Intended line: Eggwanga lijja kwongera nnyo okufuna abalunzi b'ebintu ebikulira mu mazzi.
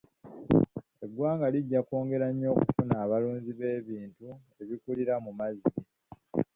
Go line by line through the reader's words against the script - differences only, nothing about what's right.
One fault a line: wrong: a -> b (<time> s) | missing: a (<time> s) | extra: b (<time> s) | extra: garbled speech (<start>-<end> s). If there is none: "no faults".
no faults